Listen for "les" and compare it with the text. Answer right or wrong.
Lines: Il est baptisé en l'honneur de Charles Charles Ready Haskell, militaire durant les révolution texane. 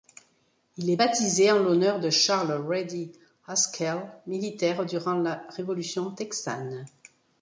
wrong